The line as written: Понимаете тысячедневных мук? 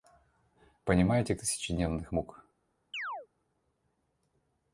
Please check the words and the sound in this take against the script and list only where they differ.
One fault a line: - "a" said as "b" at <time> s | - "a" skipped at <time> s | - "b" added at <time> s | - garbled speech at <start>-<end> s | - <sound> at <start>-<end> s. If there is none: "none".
- chirp at 2.9-3.3 s